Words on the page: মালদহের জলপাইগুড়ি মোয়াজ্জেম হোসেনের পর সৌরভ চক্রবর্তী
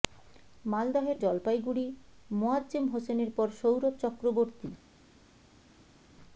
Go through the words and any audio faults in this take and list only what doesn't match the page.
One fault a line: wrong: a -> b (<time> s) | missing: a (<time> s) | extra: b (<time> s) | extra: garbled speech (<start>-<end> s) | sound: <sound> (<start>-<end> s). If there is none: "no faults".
no faults